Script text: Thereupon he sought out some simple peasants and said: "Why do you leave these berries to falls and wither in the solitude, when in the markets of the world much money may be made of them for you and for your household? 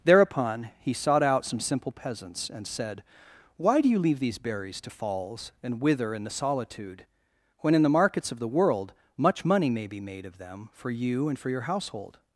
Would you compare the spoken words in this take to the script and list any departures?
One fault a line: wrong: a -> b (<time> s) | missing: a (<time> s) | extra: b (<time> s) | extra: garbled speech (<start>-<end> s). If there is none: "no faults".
no faults